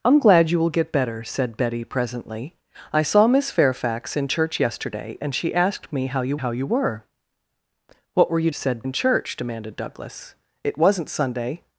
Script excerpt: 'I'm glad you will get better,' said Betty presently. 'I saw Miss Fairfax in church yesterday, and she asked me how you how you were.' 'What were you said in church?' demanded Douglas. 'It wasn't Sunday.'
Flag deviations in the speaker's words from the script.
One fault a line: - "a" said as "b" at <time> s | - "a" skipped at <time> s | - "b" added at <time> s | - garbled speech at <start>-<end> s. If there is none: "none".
none